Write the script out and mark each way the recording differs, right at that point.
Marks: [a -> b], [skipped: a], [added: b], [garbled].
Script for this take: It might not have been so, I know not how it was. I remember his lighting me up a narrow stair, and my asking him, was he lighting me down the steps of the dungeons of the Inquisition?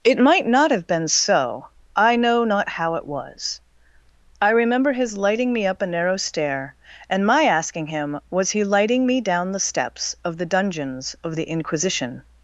It might not have been so, I know not how it was. I remember his lighting me up a narrow stair, and my asking him, was he lighting me down the steps of the dungeons of the Inquisition?